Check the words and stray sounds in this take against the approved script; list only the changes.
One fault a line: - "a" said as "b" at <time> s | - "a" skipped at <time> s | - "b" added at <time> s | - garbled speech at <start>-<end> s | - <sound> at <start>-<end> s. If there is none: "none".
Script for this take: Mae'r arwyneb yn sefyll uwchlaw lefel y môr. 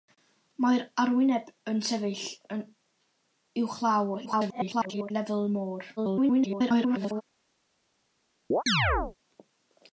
- garbled speech at 4.3-5.1 s
- garbled speech at 6.0-7.2 s
- chirp at 8.5-9.2 s